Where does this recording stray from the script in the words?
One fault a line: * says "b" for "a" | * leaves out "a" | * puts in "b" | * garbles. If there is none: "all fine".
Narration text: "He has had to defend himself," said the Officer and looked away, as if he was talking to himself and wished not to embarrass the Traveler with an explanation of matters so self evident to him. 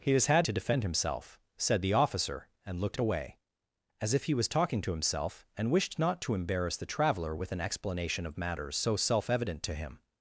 all fine